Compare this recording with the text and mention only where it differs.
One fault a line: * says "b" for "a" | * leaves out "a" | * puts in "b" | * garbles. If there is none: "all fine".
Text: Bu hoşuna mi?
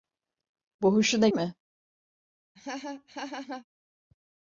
all fine